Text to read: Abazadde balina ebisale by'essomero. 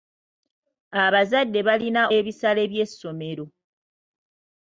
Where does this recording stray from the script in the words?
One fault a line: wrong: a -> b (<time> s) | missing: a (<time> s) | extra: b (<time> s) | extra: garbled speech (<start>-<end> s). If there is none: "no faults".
no faults